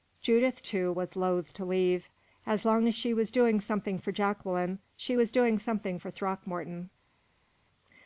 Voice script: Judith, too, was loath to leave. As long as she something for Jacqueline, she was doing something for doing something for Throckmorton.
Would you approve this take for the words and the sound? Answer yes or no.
no